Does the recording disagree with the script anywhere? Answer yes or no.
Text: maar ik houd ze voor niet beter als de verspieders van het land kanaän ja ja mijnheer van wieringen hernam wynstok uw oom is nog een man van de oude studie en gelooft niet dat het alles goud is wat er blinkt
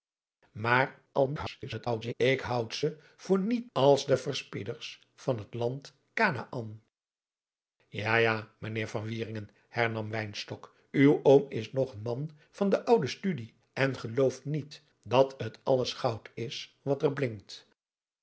yes